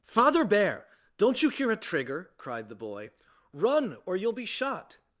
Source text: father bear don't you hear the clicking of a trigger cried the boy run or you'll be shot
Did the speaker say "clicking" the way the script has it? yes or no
no